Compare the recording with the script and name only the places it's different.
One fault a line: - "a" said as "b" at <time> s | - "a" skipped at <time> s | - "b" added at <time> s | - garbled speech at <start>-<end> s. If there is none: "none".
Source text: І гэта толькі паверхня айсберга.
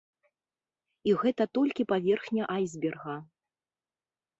none